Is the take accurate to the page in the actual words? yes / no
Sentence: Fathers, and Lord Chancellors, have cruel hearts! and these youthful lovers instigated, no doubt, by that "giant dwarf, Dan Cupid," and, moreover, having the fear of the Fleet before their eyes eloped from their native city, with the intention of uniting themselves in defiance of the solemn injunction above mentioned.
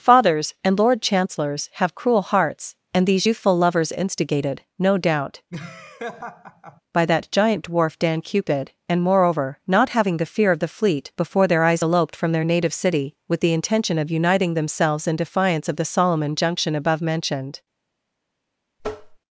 no